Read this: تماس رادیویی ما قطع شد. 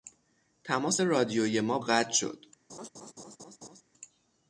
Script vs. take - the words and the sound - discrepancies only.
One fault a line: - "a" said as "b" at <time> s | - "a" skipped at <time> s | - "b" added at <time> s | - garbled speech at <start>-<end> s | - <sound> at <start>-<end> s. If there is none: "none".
- laugh at 2.7-3.8 s